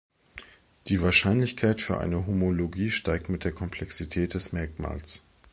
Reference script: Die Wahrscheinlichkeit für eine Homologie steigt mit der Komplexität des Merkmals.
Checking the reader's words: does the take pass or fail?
pass